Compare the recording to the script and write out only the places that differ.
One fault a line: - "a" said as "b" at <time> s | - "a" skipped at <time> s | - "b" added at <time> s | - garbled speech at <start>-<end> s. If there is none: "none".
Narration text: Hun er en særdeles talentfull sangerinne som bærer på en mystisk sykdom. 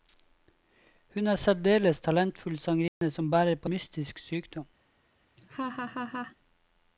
- "en" skipped at 3.7 s